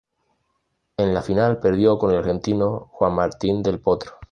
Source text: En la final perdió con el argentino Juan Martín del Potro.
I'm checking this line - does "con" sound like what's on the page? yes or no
yes